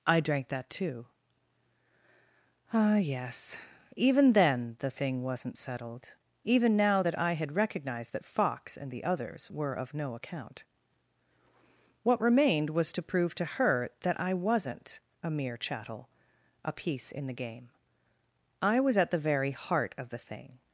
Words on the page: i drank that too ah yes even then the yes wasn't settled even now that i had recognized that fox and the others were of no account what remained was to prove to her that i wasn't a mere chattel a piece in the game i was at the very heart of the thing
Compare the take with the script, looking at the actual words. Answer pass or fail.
fail